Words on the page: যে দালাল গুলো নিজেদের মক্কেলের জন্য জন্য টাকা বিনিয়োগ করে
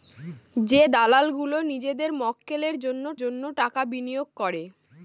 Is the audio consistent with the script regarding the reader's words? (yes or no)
yes